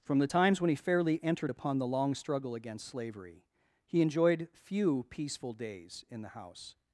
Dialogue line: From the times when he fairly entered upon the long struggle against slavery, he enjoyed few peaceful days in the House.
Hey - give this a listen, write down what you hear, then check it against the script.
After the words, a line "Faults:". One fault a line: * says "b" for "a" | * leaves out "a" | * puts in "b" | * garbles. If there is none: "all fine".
From the times when he fairly entered upon the long struggle against slavery, he enjoyed few peaceful days in the House.
Faults:
all fine